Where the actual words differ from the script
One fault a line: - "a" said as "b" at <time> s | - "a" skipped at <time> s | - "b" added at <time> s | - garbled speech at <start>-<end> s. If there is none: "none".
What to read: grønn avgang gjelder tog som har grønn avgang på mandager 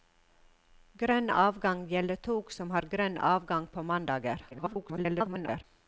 - garbled speech at 4.5-5.6 s